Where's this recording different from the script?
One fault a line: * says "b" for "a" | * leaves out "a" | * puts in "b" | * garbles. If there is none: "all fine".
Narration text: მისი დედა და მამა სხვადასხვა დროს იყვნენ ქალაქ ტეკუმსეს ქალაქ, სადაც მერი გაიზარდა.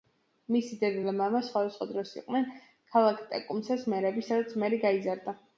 * says "მერები" for "ქალაქ"